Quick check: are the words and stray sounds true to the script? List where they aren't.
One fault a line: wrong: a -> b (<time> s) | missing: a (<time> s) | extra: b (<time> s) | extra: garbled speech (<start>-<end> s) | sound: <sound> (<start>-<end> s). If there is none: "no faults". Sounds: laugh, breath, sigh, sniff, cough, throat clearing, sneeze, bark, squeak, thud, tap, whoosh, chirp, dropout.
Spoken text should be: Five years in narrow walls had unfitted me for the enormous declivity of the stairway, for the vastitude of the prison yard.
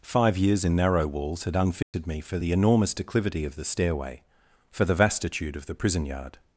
sound: dropout (1.8-1.9 s)